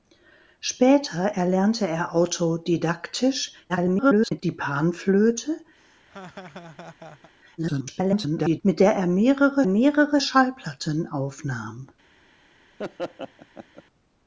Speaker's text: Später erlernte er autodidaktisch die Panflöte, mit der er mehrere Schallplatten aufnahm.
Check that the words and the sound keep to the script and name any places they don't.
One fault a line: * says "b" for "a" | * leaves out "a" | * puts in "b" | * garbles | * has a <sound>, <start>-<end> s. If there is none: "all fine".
* garbles
* has a laugh, 5.8-7.3 s
* garbles
* puts in "mehrere"
* has a laugh, 12.8-13.8 s